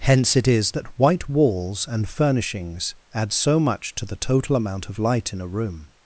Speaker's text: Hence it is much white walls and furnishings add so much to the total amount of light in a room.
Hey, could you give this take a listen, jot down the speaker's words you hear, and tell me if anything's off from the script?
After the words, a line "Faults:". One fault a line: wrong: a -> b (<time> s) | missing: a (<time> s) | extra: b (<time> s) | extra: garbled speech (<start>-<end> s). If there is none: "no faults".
Hence it is that white walls and furnishings add so much to the total amount of light in a room.
Faults:
wrong: much -> that (0.7 s)